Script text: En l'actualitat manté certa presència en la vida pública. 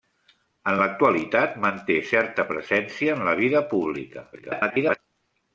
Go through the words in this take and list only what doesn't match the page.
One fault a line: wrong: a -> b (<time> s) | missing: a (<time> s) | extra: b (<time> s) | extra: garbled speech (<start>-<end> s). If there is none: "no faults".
extra: garbled speech (4.3-5.0 s)